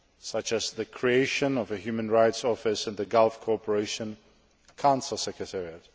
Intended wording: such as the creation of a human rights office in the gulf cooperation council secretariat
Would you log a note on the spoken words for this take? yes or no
no